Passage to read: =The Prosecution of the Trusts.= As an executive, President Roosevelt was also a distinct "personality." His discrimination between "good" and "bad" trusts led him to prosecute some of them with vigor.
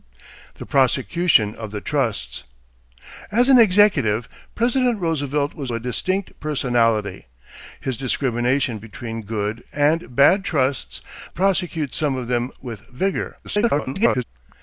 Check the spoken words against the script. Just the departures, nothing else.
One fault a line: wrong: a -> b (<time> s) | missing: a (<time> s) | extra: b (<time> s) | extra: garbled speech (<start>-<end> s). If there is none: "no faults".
missing: also (5.7 s)
missing: led him to (11.0 s)
extra: garbled speech (13.4-14.2 s)